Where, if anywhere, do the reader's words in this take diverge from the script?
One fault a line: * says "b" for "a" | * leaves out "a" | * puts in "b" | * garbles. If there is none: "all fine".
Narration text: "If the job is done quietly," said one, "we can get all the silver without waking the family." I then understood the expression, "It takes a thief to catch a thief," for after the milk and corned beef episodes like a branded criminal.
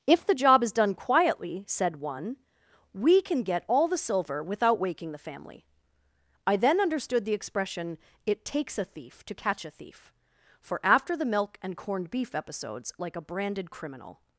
all fine